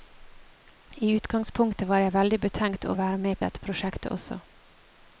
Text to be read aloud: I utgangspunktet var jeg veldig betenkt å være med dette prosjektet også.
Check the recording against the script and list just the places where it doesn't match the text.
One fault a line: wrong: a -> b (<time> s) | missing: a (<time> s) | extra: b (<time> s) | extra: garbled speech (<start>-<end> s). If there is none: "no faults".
no faults